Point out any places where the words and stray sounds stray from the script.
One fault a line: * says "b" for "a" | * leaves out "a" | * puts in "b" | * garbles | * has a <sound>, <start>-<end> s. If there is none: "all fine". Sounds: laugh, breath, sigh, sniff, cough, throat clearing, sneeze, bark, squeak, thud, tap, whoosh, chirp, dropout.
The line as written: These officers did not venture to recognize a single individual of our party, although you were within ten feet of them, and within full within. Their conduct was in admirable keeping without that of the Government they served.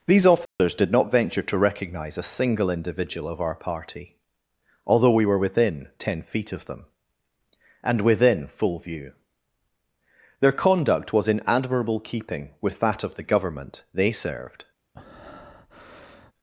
* has a dropout, 0.5-0.6 s
* says "we" for "you"
* says "view" for "within"
* says "with" for "without"
* has a breath, 14.9-16.3 s